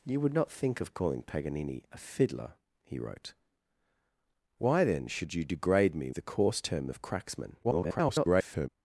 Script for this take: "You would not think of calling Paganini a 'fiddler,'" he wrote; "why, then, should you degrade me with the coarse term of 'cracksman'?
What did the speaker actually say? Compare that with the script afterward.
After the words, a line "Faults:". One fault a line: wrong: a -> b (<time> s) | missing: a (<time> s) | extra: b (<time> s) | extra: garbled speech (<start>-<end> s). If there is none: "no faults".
"You would not think of calling Paganini a 'fiddler,'" he wrote; "why, then, should you degrade me the coarse term of 'cracksman'? [garbled]
Faults:
missing: with (6.1 s)
extra: garbled speech (7.6-8.7 s)